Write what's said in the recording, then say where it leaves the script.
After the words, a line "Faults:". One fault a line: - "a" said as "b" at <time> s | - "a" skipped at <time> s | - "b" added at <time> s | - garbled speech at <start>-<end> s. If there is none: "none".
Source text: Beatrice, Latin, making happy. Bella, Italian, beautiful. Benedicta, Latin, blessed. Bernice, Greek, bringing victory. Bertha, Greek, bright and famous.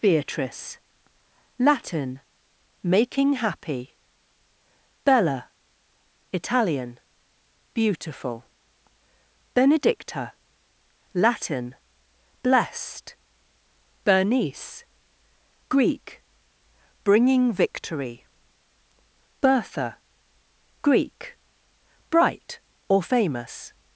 Beatrice, Latin, making happy. Bella, Italian, beautiful. Benedicta, Latin, blessed. Bernice, Greek, bringing victory. Bertha, Greek, bright or famous.
Faults:
- "and" said as "or" at 22.9 s